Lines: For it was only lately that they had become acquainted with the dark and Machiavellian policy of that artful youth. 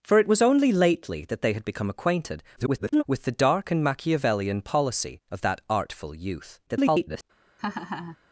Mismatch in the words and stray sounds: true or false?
true